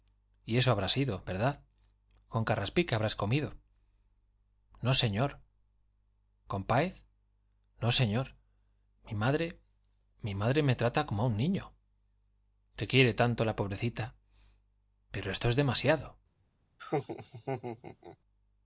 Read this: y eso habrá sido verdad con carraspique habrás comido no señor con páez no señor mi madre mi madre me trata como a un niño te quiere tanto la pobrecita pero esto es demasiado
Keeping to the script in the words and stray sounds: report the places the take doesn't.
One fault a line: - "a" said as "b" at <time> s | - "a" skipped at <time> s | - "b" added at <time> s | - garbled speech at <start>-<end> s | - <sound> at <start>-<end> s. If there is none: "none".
- laugh at 16.8-18.2 s